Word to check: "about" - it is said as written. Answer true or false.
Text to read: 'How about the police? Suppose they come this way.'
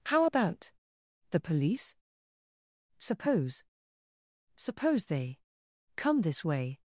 true